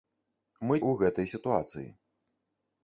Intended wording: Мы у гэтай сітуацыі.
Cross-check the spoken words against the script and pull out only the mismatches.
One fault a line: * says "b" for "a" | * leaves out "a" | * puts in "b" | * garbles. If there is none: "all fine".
all fine